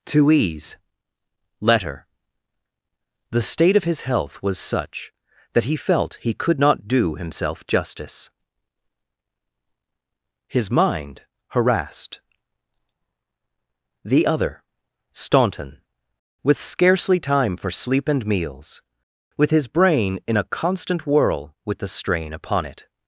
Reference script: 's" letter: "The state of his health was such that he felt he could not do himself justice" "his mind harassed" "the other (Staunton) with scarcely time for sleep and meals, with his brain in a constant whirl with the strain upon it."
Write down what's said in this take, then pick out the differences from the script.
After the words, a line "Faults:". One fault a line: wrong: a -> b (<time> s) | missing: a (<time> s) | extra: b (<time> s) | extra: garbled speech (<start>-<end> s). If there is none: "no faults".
'to ease" letter: "The state of his health was such that he felt he could not do himself justice" "his mind harassed" "the other (Staunton) with scarcely time for sleep and meals, with his brain in a constant whirl with the strain upon it."
Faults:
wrong: s -> to ease (0.1 s)